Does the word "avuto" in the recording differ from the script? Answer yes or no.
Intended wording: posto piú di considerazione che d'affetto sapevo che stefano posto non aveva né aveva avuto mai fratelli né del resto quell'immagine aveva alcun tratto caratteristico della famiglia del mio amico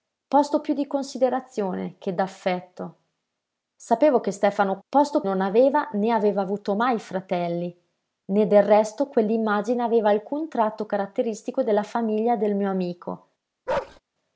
no